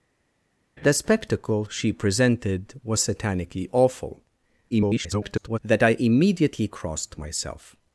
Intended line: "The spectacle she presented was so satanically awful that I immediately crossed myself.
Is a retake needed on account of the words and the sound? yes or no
yes